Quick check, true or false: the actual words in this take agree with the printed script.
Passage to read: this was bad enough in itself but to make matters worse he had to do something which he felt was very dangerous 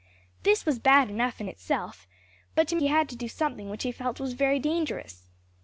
false